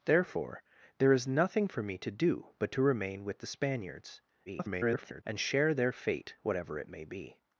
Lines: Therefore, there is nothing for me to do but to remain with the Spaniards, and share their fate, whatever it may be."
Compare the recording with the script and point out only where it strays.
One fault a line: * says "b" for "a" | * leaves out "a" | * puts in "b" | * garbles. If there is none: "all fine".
* garbles